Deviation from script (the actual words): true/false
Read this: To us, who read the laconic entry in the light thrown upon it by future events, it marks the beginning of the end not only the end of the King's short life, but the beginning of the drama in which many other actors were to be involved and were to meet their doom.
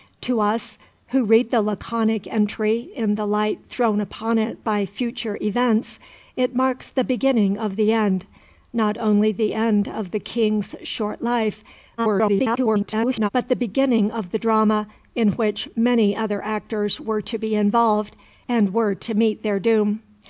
true